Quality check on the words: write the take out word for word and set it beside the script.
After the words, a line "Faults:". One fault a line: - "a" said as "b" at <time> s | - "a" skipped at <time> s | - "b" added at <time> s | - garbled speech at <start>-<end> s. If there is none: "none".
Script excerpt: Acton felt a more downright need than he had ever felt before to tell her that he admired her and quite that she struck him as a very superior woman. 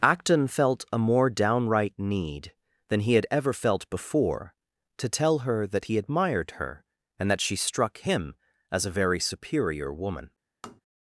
Acton felt a more downright need than he had ever felt before to tell her that he admired her and that she struck him as a very superior woman.
Faults:
- "quite" skipped at 7.3 s